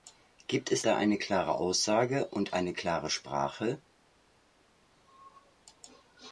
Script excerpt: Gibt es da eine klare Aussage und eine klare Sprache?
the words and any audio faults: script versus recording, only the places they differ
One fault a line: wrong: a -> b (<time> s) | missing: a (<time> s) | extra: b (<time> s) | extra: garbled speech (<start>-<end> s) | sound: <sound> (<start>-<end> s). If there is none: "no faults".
no faults